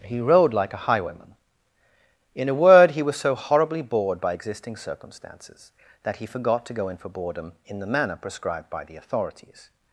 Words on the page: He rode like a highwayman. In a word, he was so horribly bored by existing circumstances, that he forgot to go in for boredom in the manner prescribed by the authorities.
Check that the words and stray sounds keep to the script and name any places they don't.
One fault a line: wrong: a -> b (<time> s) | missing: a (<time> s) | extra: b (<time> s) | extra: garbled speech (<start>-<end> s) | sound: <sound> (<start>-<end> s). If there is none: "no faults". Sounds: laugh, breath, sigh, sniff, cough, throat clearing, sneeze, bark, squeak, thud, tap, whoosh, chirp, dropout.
no faults